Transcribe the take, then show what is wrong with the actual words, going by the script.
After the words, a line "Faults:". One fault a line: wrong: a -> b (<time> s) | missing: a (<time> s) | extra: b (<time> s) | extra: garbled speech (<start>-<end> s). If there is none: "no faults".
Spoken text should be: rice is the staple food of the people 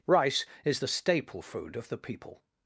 rice is the staple food of the people
Faults:
no faults